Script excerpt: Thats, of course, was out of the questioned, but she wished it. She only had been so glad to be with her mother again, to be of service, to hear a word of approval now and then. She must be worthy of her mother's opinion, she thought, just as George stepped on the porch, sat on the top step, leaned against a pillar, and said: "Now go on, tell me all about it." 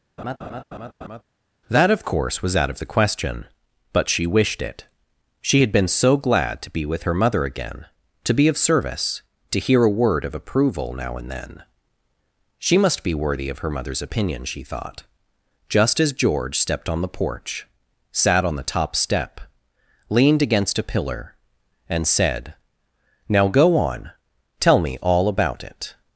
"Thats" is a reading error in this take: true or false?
true